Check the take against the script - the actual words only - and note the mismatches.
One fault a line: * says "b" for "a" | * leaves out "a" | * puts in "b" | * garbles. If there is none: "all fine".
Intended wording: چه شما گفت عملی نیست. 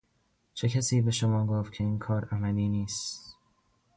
* puts in "کسی به"
* puts in "که این کار"